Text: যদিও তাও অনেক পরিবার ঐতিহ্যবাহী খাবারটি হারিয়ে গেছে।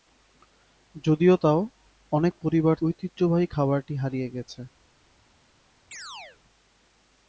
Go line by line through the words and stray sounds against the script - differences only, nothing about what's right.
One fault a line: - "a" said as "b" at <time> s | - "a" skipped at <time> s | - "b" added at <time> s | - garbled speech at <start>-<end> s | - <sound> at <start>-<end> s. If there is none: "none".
- chirp at 5.9-6.4 s